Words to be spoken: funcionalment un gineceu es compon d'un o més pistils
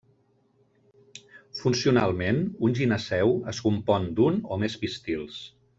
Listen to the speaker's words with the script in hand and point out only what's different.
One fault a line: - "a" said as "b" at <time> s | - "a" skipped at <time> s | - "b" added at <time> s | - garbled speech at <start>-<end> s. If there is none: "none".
none